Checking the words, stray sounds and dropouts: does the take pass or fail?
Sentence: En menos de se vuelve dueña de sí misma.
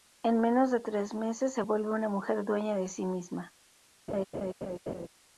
fail